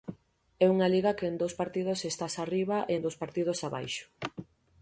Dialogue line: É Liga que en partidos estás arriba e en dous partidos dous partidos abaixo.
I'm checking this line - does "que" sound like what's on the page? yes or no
yes